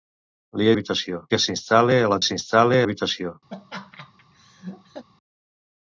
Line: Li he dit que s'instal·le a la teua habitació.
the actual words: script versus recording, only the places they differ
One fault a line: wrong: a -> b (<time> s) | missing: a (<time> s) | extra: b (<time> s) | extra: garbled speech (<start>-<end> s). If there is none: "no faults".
wrong: dit -> habitació (0.8 s)
wrong: teua -> s'instal·le (2.3 s)